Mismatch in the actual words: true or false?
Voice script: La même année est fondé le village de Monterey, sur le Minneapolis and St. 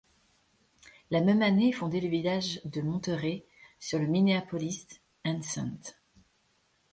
false